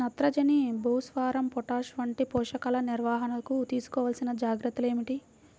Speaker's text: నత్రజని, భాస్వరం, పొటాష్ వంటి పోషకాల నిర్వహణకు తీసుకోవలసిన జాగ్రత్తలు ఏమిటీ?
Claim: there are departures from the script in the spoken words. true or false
false